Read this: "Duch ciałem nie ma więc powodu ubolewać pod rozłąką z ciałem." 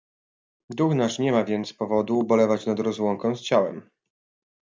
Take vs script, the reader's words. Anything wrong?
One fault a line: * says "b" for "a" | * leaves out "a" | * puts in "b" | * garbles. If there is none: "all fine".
* says "nasz" for "ciałem"
* says "nad" for "pod"